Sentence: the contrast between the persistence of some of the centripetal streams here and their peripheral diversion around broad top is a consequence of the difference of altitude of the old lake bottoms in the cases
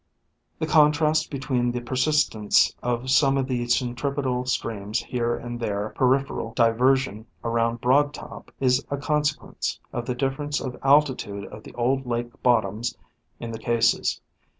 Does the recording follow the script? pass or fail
pass